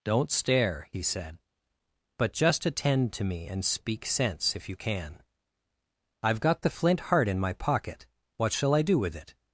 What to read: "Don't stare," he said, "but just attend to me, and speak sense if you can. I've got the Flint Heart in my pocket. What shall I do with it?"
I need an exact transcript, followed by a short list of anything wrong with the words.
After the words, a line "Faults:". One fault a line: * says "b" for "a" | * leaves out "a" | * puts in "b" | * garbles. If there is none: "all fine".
"Don't stare," he said, "but just attend to me, and speak sense if you can. I've got the Flint Heart in my pocket. What shall I do with it?"
Faults:
all fine